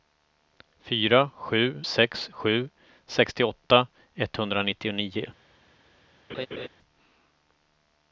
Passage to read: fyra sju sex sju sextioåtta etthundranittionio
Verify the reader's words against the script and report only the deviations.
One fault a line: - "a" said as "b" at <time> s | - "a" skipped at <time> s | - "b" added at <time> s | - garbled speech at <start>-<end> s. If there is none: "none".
none